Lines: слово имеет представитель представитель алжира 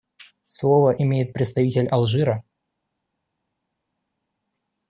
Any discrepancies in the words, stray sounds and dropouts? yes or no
yes